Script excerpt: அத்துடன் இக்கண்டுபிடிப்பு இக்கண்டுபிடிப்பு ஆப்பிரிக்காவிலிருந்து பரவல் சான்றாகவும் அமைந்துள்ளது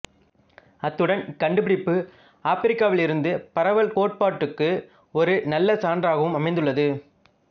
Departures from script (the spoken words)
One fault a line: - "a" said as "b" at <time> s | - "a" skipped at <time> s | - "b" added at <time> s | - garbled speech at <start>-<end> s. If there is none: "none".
- "இக்கண்டுபிடிப்பு" skipped at 1.9 s
- "கோட்பாட்டுக்கு ஒரு நல்ல" added at 3.9 s